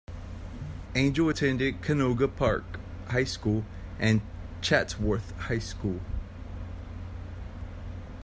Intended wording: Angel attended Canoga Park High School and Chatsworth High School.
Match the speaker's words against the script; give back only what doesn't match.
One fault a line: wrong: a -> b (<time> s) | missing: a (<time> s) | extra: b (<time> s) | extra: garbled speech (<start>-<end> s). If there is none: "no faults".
no faults